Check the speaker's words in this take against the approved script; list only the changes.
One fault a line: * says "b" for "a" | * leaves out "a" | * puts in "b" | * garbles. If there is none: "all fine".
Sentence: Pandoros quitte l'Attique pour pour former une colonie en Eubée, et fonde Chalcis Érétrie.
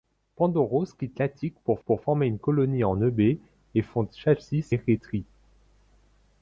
all fine